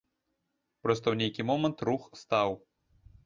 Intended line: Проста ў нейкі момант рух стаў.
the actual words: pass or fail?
pass